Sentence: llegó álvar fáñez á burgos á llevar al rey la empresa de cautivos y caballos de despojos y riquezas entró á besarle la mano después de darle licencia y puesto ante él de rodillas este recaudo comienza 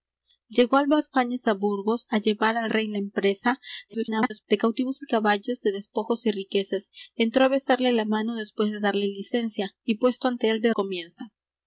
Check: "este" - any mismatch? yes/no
yes